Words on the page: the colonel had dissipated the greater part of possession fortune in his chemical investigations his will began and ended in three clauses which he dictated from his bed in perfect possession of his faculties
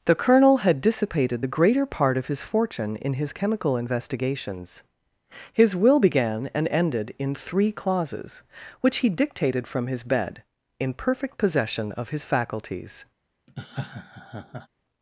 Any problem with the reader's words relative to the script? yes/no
yes